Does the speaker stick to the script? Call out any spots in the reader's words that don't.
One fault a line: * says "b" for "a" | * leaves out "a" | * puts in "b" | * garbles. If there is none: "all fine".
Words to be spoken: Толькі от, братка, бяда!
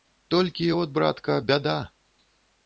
all fine